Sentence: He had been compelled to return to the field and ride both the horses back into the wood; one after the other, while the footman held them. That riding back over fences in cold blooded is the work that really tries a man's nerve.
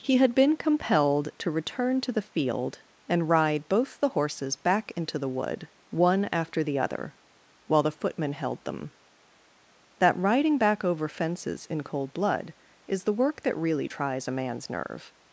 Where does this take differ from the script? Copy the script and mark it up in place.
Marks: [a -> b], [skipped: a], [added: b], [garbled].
He had been compelled to return to the field and ride both the horses back into the wood; one after the other, while the footman held them. That riding back over fences in cold [blooded -> blood] is the work that really tries a man's nerve.